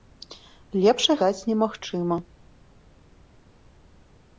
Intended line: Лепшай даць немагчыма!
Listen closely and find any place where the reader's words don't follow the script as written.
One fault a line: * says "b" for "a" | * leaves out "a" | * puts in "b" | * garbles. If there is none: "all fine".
all fine